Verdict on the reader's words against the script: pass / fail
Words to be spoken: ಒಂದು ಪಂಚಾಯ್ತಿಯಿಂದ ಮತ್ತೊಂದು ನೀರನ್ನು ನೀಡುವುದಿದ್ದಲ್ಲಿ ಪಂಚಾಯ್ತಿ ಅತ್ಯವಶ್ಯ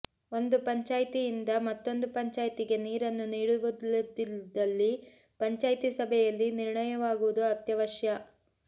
fail